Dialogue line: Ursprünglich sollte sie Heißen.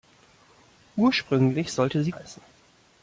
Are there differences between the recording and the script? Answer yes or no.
no